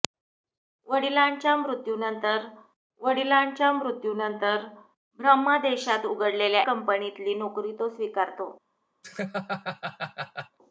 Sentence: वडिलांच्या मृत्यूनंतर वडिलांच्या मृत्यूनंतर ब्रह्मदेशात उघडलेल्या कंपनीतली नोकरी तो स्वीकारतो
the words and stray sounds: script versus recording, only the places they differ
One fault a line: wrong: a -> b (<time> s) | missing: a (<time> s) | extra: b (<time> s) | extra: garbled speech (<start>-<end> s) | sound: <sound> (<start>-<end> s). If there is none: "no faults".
sound: laugh (9.0-10.6 s)